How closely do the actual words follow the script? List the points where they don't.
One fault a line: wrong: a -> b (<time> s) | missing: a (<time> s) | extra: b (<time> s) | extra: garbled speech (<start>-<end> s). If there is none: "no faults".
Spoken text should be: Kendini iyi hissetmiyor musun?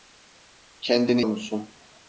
missing: iyi hissetmiyor (1.2 s)